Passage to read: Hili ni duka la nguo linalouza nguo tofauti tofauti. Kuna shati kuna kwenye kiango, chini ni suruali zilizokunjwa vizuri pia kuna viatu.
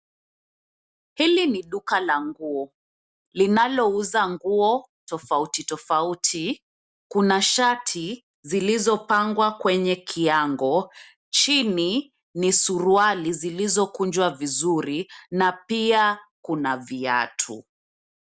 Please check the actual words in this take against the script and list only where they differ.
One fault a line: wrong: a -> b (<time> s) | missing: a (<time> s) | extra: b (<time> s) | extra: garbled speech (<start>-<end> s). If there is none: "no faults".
wrong: kuna -> zilizopangwa (8.4 s)
extra: na (15.3 s)